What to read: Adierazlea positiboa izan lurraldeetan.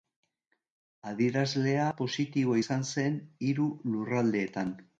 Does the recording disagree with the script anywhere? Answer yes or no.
yes